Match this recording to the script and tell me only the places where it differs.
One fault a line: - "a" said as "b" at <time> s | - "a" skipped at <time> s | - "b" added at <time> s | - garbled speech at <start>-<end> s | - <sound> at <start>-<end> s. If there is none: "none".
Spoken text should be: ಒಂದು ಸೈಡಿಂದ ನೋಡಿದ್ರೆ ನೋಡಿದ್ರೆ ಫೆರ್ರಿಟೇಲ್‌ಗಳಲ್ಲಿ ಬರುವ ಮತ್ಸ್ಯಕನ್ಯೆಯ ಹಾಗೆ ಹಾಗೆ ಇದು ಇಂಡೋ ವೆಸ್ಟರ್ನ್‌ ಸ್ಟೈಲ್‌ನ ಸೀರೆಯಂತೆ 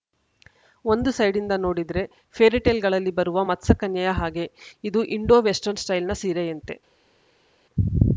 - "ನೋಡಿದ್ರೆ" skipped at 2.0 s
- "ಹಾಗೆ" skipped at 4.5 s